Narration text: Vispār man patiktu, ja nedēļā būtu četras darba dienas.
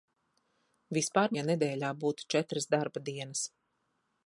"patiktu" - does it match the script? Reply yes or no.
no